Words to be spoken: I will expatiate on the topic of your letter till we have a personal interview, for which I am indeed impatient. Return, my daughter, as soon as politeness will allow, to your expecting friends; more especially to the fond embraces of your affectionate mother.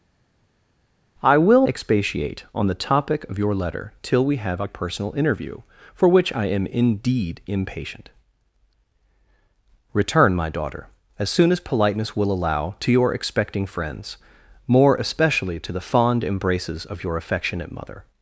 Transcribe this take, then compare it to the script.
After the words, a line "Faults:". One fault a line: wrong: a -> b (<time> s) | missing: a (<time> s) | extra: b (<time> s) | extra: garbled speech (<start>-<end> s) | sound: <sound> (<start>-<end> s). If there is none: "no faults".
I will expatiate on the topic of your letter till we have a personal interview, for which I am indeed impatient. Return, my daughter, as soon as politeness will allow, to your expecting friends; more especially to the fond embraces of your affectionate mother.
Faults:
no faults